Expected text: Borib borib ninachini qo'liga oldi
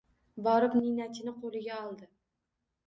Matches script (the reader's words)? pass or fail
fail